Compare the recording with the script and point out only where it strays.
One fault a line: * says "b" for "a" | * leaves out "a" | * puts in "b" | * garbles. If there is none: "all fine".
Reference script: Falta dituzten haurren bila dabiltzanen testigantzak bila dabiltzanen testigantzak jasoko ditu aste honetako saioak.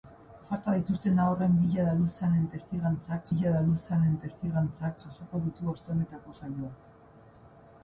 all fine